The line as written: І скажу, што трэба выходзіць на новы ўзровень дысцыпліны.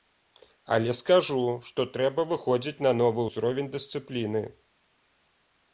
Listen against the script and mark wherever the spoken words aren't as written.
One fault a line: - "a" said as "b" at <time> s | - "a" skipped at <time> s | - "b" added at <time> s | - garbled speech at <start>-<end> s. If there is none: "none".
- "І" said as "Але" at 0.8 s